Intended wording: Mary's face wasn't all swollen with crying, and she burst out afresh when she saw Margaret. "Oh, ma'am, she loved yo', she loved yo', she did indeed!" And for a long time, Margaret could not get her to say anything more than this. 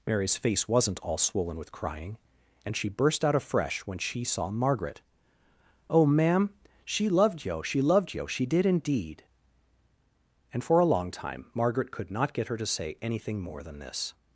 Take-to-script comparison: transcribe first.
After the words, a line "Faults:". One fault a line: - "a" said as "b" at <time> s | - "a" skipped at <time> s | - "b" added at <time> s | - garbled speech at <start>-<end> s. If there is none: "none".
Mary's face wasn't all swollen with crying, and she burst out afresh when she saw Margaret. "Oh, ma'am, she loved yo', she loved yo', she did indeed!" And for a long time, Margaret could not get her to say anything more than this.
Faults:
none